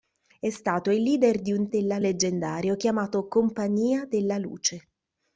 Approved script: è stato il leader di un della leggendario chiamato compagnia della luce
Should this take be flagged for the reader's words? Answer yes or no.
no